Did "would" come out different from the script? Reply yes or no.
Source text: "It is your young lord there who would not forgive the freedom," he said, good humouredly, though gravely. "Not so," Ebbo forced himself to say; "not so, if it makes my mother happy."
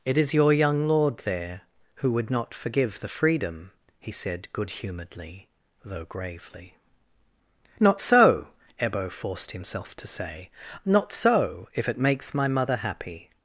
no